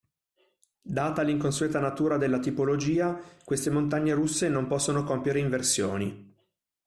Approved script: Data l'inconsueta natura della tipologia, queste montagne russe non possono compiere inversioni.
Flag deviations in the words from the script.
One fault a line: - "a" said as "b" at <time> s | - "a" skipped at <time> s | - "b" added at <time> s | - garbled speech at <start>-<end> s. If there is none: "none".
none